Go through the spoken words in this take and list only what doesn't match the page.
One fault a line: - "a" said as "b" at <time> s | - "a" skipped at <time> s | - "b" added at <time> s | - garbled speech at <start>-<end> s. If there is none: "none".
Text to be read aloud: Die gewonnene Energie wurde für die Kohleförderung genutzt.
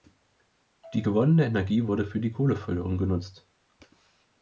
none